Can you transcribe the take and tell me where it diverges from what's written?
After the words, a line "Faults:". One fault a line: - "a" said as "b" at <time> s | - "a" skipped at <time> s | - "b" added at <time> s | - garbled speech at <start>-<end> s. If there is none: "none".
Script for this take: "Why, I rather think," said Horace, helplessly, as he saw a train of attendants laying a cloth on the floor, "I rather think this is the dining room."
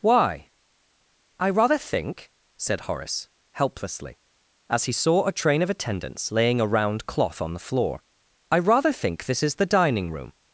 "Why, I rather think," said Horace, helplessly, as he saw a train of attendants laying a round cloth on the floor, "I rather think this is the dining room."
Faults:
- "round" added at 6.7 s